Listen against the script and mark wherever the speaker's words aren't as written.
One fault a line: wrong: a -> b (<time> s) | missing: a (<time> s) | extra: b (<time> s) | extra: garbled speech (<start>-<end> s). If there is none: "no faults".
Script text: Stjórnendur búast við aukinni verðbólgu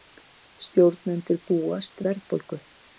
missing: við aukinni (2.0 s)